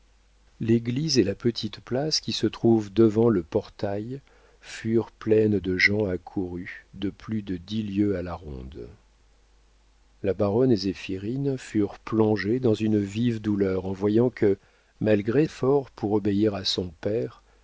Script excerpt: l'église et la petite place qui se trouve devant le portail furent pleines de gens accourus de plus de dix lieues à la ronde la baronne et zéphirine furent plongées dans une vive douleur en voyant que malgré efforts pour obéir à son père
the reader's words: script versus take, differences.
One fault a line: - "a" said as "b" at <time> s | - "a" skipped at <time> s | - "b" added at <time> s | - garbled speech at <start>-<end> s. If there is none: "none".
none